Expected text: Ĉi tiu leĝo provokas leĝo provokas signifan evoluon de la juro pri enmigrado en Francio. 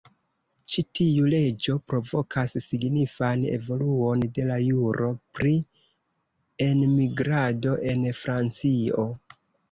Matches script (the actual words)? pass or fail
fail